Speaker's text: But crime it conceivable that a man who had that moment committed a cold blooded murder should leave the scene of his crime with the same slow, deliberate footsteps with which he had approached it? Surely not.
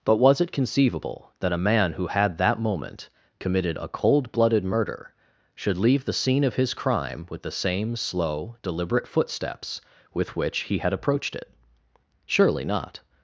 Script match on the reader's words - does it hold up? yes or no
no